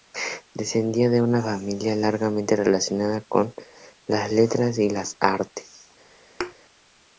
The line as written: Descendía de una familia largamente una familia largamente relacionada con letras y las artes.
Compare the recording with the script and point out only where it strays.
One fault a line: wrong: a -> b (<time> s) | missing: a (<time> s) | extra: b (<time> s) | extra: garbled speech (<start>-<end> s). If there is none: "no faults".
missing: una familia largamente (2.5 s)
extra: las (4.1 s)